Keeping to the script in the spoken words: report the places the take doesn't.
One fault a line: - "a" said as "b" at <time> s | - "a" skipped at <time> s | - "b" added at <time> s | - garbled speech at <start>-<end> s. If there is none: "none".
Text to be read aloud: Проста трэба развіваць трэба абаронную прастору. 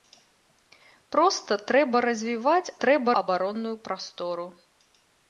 none